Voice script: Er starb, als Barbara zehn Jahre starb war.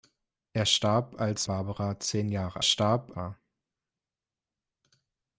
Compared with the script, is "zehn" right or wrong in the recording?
right